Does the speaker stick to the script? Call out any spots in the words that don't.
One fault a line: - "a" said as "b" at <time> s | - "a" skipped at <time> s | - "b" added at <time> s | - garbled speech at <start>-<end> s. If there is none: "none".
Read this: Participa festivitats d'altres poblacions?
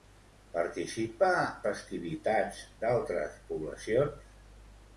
none